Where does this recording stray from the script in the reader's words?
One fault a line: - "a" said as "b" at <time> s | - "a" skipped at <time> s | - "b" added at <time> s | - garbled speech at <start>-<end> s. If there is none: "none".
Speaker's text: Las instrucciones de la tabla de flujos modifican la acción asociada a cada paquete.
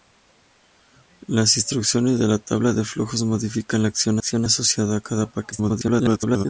- "acción" added at 4.2 s
- garbled speech at 5.5-6.5 s